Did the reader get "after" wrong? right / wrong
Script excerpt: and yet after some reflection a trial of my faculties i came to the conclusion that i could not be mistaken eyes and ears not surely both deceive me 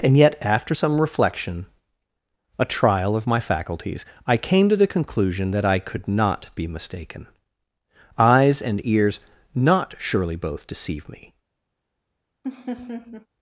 right